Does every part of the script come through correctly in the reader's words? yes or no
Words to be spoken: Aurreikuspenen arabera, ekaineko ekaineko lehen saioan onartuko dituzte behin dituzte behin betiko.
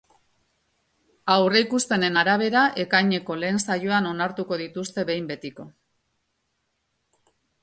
no